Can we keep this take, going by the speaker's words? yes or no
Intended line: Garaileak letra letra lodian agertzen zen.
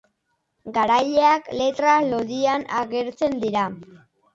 no